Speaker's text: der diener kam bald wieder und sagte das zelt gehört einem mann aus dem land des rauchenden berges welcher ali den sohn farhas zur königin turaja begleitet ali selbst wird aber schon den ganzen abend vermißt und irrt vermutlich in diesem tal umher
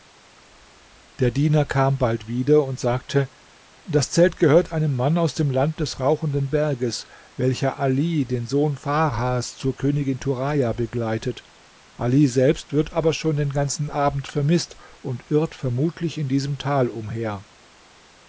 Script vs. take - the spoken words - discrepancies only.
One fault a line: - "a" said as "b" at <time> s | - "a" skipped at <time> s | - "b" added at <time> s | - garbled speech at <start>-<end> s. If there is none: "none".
none